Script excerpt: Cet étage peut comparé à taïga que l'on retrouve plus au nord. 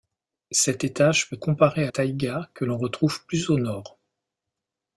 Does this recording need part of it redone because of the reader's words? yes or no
no